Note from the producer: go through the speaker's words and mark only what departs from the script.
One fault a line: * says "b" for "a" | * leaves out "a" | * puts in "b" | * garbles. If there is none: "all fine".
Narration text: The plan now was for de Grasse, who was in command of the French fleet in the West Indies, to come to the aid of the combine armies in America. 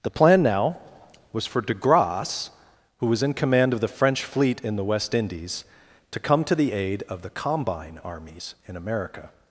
all fine